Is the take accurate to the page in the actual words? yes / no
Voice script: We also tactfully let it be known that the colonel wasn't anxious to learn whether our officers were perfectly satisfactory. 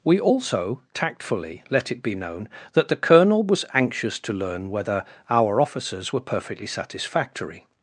no